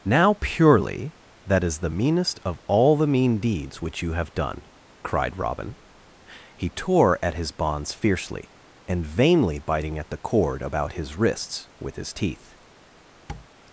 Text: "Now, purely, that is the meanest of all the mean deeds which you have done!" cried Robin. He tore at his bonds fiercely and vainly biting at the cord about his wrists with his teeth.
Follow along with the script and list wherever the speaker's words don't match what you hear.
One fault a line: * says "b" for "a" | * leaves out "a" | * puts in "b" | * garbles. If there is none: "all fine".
all fine